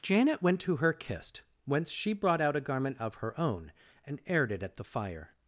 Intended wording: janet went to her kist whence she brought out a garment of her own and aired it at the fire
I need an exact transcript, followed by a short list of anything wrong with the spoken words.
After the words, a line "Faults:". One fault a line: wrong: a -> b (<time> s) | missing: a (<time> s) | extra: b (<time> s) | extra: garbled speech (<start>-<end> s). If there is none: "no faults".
janet went to her kist whence she brought out a garment of her own and aired it at the fire
Faults:
no faults